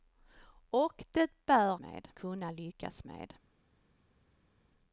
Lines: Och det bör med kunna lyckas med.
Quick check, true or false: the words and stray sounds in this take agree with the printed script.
true